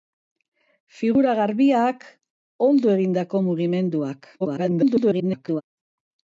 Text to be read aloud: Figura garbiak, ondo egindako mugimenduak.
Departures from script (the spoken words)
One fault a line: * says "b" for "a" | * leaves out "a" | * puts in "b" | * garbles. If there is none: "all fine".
* garbles